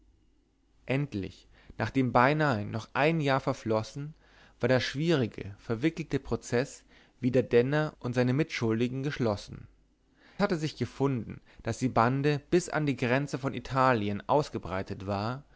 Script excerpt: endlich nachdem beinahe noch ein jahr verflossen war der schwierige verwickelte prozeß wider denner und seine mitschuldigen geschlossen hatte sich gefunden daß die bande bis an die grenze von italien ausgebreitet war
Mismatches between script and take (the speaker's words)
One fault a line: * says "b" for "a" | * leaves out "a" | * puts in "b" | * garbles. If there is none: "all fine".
all fine